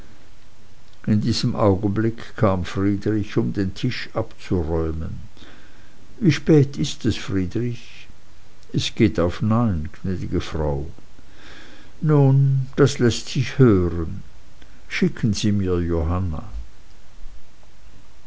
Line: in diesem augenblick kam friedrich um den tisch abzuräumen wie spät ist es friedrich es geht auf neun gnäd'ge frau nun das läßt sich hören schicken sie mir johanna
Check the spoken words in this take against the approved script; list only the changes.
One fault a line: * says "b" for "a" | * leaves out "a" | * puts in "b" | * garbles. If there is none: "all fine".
all fine